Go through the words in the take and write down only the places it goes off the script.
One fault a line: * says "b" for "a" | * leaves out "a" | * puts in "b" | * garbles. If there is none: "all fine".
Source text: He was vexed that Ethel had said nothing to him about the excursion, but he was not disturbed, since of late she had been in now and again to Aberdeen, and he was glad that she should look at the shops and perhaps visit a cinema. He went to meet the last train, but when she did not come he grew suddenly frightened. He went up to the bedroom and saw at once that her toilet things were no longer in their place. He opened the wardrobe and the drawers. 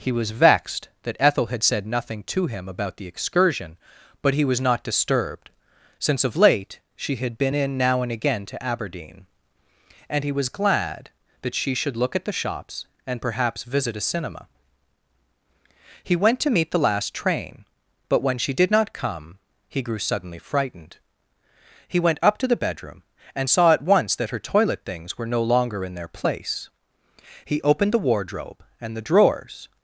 all fine